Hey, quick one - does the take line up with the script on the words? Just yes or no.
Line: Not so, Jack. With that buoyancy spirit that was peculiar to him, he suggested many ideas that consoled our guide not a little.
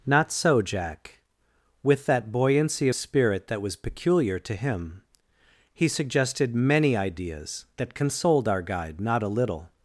yes